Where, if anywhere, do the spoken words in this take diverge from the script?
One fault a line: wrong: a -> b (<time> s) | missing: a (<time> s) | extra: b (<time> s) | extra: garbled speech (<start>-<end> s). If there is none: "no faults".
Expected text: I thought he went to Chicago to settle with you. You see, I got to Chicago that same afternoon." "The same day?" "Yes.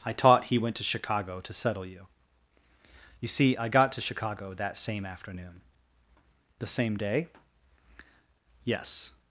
wrong: thought -> taught (0.1 s)
missing: with (1.9 s)